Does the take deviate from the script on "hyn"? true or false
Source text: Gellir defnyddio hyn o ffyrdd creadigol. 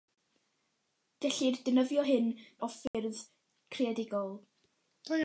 false